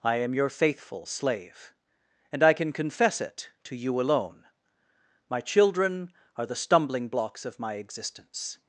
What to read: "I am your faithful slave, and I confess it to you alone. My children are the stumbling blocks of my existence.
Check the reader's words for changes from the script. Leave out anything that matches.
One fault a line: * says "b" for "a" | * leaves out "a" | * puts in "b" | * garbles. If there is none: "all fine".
* puts in "can"